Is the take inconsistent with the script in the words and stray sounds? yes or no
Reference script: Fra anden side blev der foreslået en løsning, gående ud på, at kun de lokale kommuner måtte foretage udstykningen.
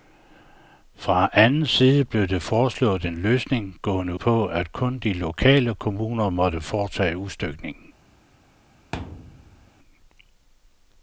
yes